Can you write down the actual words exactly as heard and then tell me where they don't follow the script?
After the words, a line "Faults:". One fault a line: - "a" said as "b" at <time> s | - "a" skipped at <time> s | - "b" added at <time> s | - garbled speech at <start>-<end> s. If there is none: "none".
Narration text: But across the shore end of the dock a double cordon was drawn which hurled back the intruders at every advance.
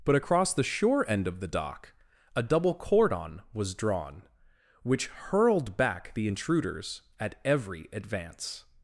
But across the shore end of the dock a double cordon was drawn which hurled back the intruders at every advance.
Faults:
none